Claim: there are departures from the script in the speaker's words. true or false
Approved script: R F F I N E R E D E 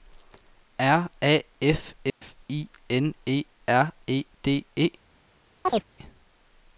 true